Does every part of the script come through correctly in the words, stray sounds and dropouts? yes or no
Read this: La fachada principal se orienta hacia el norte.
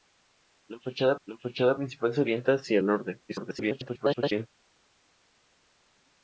no